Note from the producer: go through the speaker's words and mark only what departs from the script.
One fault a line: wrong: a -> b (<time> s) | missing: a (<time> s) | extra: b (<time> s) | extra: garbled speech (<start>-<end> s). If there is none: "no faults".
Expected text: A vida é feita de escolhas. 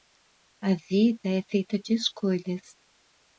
no faults